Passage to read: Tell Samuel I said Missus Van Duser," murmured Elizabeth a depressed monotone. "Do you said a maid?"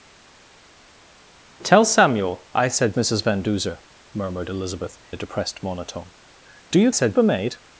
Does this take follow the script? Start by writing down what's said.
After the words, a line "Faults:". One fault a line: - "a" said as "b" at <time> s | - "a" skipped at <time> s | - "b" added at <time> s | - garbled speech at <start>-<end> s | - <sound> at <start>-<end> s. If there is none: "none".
Tell Samuel I said Missus Van Duser," murmured Elizabeth a depressed monotone. "Do you said a maid?"
Faults:
none